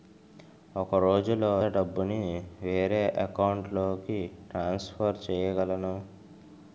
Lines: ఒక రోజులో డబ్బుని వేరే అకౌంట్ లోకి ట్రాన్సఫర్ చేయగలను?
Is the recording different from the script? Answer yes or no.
no